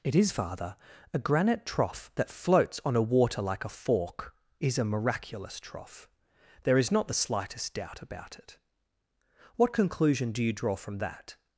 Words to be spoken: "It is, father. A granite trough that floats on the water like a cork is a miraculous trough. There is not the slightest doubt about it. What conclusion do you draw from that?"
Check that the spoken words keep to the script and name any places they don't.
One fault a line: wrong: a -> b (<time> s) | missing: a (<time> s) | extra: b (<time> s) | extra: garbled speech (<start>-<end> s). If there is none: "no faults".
wrong: the -> a (3.0 s)
wrong: cork -> fork (3.7 s)